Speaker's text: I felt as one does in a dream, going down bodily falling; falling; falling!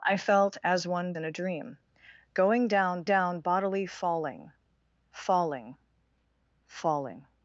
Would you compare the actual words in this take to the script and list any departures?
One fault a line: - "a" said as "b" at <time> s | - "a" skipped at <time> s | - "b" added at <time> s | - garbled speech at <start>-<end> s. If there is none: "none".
- "does" skipped at 1.1 s
- "down" added at 3.0 s